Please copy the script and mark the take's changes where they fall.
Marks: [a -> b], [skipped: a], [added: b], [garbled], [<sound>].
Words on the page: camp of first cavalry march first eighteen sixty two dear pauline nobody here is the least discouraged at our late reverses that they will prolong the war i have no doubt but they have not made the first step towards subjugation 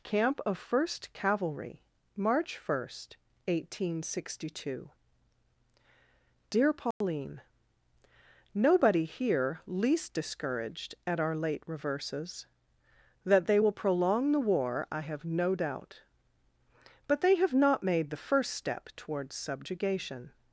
camp of first cavalry march first eighteen sixty two dear pauline [dropout] nobody here [skipped: is the] least discouraged at our late reverses that they will prolong the war i have no doubt but they have not made the first step towards subjugation